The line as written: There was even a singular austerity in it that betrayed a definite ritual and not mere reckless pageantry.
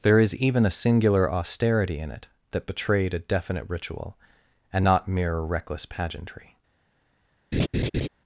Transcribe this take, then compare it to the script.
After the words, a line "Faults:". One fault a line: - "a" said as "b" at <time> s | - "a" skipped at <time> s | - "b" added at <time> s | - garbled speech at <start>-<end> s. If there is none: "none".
There is even a singular austerity in it that betrayed a definite ritual and not mere reckless pageantry.
Faults:
- "was" said as "is" at 0.2 s